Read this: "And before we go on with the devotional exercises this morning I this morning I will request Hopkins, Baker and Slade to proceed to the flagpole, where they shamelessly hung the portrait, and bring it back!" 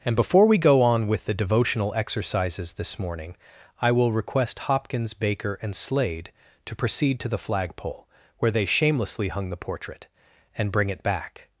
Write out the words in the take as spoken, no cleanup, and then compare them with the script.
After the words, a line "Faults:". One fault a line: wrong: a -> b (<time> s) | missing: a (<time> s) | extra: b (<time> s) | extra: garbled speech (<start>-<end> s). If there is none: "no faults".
"And before we go on with the devotional exercises this morning I will request Hopkins, Baker and Slade to proceed to the flagpole, where they shamelessly hung the portrait, and bring it back!"
Faults:
missing: this morning I (3.9 s)